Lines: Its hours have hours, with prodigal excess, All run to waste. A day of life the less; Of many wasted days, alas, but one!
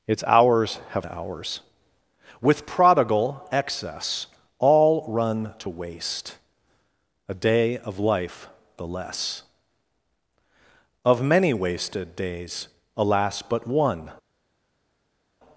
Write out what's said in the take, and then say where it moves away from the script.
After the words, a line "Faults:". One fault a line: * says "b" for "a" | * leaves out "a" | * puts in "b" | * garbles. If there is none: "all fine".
Its hours have hours, with prodigal excess, All run to waste. A day of life the less; Of many wasted days, alas, but one!
Faults:
all fine